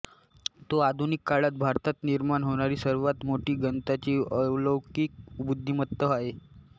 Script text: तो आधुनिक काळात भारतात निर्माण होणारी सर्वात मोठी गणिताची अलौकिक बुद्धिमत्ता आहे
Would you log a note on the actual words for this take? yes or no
no